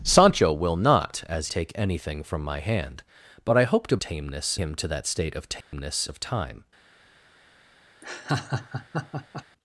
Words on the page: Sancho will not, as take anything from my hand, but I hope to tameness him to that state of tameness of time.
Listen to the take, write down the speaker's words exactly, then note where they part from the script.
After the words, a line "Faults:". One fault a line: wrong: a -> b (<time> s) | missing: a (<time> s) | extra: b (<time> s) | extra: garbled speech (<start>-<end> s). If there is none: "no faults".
Sancho will not, as take anything from my hand, but I hope to tameness him to that state of tameness of time.
Faults:
no faults